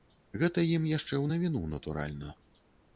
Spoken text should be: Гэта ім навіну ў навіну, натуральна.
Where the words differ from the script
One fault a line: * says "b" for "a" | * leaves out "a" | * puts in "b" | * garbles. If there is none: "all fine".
* says "яшчэ" for "навіну"